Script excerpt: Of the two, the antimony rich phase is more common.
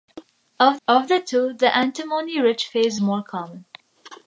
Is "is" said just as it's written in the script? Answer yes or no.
no